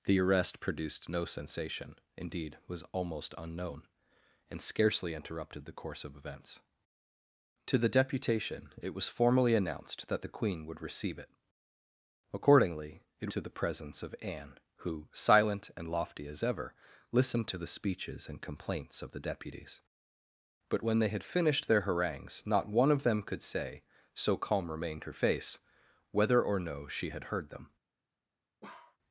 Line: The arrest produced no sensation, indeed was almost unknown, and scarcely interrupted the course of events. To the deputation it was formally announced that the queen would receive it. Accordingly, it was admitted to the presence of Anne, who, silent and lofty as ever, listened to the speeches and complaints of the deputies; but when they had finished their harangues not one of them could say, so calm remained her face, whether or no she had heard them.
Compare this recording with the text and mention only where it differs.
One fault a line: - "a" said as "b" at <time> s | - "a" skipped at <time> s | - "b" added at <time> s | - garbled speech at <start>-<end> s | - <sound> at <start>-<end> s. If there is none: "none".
- "was admitted" skipped at 13.3 s
- bark at 28.6-29.0 s